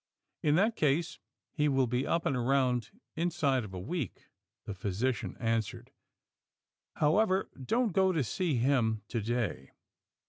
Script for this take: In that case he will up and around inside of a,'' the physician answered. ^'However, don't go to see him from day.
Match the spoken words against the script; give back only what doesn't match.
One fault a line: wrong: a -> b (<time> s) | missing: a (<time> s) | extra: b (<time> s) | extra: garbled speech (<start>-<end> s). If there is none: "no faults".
extra: be (1.9 s)
extra: week (3.8 s)
wrong: from -> to (9.1 s)